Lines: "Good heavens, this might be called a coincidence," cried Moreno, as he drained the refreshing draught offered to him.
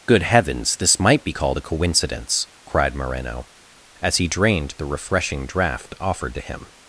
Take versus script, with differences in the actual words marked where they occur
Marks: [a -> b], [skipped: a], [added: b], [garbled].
"Good heavens, this might be called a coincidence," cried Moreno, as he drained the refreshing draught offered to him.